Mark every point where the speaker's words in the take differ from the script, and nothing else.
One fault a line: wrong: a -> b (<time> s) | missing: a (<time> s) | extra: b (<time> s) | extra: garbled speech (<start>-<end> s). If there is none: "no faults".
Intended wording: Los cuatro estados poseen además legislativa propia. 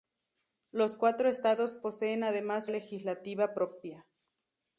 no faults